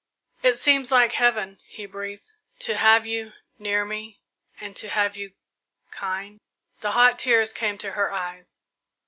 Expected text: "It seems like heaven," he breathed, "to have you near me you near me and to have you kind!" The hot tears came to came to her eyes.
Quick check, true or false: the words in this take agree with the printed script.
false